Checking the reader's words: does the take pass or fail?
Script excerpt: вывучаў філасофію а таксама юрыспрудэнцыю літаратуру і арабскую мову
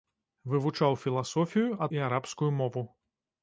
fail